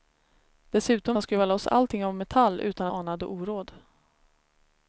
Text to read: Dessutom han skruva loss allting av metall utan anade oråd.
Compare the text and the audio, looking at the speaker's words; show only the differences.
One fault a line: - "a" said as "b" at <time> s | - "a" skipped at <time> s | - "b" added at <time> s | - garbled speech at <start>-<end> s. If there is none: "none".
none